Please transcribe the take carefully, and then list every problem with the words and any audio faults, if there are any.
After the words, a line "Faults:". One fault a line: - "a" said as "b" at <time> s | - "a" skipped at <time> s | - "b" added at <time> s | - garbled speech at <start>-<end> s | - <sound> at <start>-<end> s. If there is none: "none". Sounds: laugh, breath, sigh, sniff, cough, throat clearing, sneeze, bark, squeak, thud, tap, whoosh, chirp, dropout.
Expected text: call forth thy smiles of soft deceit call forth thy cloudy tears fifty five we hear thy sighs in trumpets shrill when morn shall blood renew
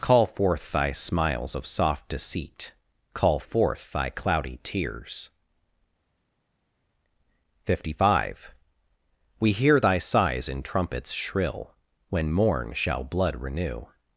call forth thy smiles of soft deceit call forth thy cloudy tears fifty five we hear thy sighs in trumpets shrill when morn shall blood renew
Faults:
none